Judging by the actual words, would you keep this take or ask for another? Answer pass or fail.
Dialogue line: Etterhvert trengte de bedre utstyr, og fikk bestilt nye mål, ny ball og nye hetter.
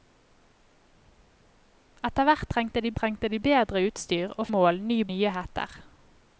fail